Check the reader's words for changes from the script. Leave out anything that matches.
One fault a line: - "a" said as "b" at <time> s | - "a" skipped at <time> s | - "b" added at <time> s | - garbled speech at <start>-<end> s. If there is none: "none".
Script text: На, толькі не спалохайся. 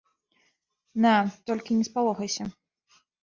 none